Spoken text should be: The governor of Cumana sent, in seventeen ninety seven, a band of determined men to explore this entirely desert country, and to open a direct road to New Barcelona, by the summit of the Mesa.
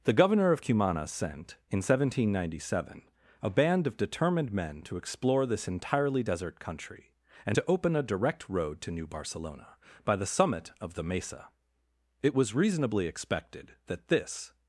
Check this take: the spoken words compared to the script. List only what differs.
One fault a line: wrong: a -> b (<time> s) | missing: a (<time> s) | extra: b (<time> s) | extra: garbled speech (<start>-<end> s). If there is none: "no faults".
extra: It was reasonably expected that this (12.2 s)